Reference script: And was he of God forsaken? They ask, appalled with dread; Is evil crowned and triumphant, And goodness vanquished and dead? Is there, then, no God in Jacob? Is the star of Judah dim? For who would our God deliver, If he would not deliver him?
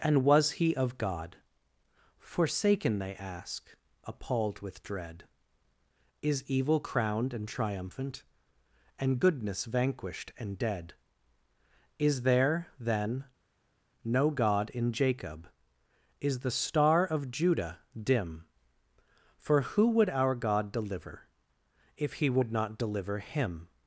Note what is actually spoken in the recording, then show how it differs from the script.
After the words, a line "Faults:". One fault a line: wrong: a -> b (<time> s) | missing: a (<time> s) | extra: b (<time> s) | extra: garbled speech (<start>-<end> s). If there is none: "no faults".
And was he of God forsaken? They ask, appalled with dread; Is evil crowned and triumphant, And goodness vanquished and dead? Is there, then, no God in Jacob? Is the star of Judah dim? For who would our God deliver, If he would not deliver him?
Faults:
no faults